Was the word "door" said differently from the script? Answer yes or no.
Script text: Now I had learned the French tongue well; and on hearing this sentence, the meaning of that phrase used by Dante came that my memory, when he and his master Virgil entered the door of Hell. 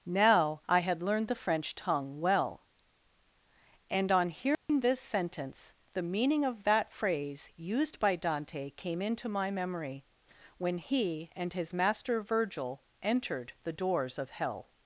yes